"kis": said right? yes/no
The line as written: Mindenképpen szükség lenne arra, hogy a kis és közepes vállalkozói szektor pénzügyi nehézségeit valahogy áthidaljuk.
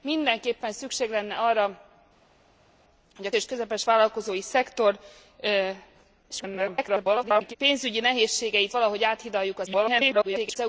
no